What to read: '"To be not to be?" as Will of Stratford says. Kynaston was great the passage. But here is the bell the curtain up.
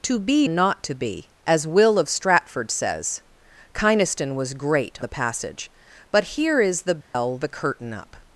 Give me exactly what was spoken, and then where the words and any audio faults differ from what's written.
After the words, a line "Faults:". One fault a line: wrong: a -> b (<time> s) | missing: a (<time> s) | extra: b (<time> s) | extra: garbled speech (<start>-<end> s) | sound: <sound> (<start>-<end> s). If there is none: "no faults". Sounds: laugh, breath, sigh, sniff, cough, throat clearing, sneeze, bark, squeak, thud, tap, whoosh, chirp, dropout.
'"To be not to be?" as Will of Stratford says. Kynaston was great the passage. But here is the bell the curtain up.
Faults:
sound: dropout (7.0-7.1 s)